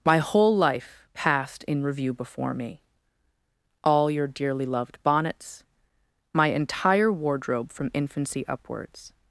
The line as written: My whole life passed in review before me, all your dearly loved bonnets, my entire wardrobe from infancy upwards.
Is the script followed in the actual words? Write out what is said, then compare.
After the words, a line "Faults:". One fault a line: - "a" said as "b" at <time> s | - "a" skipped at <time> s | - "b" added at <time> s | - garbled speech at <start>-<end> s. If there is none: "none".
My whole life passed in review before me, all your dearly loved bonnets, my entire wardrobe from infancy upwards.
Faults:
none